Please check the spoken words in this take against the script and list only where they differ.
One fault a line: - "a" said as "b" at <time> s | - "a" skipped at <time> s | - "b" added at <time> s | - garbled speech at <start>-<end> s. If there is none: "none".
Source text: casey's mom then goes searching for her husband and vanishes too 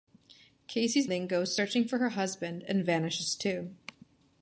- "mom" skipped at 1.1 s